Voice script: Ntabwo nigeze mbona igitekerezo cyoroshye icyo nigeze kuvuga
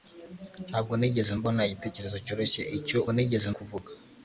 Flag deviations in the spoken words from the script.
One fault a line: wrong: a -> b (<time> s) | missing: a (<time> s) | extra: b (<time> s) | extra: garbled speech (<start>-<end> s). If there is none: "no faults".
no faults